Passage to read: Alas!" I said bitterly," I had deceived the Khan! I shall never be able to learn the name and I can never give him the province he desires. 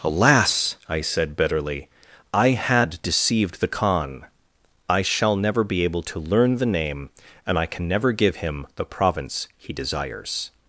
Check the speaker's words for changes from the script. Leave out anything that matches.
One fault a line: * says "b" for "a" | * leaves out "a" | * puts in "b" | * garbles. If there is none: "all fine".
all fine